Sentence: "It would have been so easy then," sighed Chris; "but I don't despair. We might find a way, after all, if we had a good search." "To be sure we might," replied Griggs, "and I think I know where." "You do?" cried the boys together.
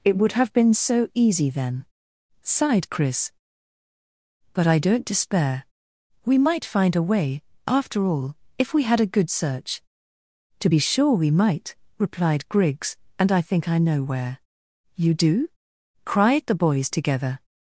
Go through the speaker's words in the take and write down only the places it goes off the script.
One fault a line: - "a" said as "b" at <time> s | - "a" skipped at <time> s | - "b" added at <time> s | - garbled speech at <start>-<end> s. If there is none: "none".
none